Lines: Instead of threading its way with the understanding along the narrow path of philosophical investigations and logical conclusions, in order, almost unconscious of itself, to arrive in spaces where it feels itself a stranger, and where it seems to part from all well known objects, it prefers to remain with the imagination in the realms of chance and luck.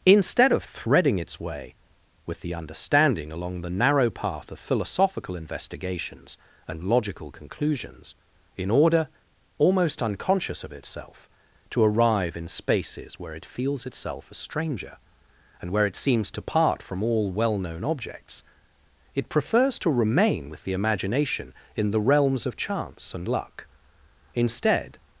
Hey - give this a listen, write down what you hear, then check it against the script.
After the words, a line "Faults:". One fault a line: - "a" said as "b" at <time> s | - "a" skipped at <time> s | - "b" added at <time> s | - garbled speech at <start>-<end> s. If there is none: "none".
Instead of threading its way with the understanding along the narrow path of philosophical investigations and logical conclusions, in order, almost unconscious of itself, to arrive in spaces where it feels itself a stranger, and where it seems to part from all well known objects, it prefers to remain with the imagination in the realms of chance and luck. Instead
Faults:
- "Instead" added at 24.3 s